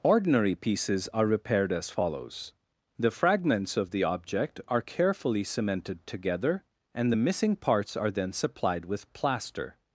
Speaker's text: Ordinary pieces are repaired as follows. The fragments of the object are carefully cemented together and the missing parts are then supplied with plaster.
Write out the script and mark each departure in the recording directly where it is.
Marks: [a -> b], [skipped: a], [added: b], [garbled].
Ordinary pieces are repaired as follows. The fragments of the object are carefully cemented together and the missing parts are then supplied with plaster.